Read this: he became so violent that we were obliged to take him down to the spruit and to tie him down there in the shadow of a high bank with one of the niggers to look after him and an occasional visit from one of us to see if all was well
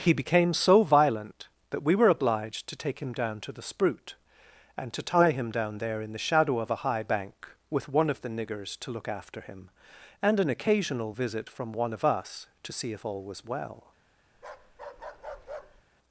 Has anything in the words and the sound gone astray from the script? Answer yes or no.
yes